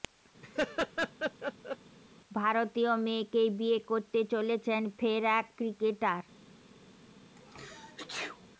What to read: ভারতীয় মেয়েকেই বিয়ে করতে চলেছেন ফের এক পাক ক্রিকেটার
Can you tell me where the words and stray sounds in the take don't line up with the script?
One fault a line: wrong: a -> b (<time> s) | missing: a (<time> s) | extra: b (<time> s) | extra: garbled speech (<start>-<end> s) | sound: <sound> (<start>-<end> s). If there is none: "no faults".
sound: laugh (0.4-1.8 s)
missing: পাক (5.5 s)
sound: sneeze (7.4-8.5 s)